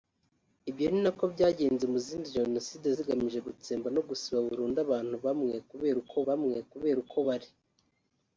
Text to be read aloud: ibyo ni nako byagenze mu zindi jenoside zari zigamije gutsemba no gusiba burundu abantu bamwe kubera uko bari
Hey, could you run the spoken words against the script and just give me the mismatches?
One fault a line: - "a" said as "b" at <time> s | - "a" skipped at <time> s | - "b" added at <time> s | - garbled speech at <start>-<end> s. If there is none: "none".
- "zari" skipped at 2.9 s
- "bamwe kubera uko" added at 6.3 s